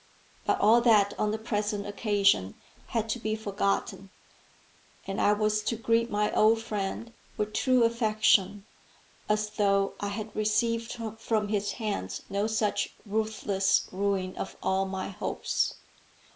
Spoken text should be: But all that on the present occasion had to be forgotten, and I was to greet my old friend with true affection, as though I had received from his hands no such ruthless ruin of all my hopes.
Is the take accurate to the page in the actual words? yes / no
yes